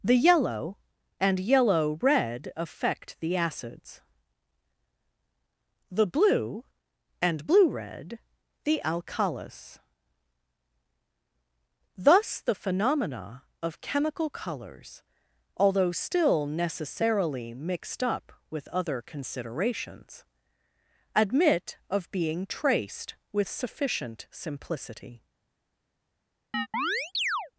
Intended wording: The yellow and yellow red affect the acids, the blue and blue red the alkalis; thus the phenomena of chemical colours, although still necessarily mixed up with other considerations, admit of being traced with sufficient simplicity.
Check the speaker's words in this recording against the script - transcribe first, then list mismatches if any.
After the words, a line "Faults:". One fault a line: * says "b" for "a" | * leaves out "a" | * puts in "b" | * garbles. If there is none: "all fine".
The yellow and yellow red affect the acids, the blue and blue red the alkalis; thus the phenomena of chemical colours, although still necessarily mixed up with other considerations, admit of being traced with sufficient simplicity.
Faults:
all fine